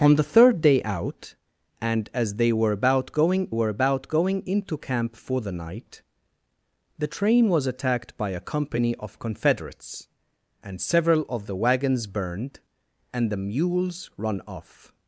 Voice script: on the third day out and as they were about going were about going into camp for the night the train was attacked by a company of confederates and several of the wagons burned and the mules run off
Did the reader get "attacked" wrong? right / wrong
right